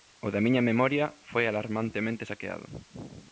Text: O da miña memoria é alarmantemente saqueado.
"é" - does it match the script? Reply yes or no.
no